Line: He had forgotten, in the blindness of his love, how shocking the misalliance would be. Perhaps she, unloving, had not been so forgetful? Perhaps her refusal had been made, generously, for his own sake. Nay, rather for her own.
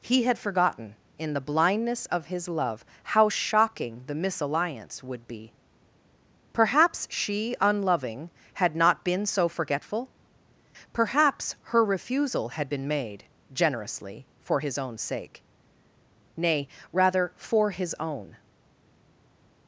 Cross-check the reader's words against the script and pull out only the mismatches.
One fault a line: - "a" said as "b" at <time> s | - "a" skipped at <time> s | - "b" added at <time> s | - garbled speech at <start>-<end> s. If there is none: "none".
- "her" said as "his" at 17.7 s